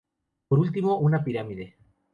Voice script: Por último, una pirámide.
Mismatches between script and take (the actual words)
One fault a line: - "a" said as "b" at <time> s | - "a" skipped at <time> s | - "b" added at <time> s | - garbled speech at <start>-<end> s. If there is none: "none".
none